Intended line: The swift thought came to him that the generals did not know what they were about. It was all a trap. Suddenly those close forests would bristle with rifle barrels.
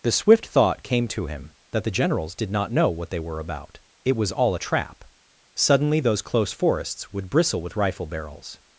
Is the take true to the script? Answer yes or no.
yes